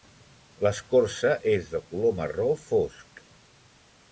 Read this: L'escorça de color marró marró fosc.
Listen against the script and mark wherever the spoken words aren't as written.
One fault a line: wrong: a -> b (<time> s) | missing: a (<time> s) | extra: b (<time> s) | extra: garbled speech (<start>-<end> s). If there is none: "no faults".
extra: és (1.5 s)
missing: marró (2.5 s)